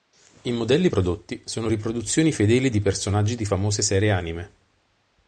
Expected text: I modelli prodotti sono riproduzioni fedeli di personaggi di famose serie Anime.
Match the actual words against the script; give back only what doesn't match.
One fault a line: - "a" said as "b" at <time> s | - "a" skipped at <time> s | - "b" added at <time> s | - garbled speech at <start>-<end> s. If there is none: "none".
none